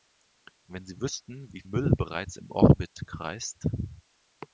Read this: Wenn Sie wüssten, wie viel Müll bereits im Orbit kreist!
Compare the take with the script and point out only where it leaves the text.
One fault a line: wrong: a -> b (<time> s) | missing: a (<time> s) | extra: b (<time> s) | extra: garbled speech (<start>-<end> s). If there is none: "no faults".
missing: viel (1.6 s)